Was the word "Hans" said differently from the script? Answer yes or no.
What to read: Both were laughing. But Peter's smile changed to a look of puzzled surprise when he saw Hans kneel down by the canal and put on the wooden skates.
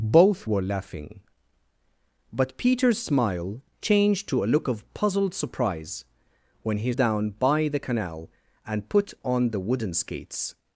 yes